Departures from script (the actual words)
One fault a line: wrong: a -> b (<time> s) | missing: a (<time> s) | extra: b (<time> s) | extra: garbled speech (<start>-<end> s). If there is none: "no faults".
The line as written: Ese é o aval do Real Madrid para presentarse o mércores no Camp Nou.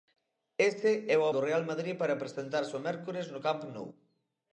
missing: aval (1.3 s)